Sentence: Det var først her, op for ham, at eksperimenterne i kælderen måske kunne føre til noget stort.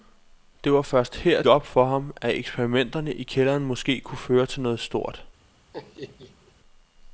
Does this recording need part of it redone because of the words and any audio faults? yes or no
yes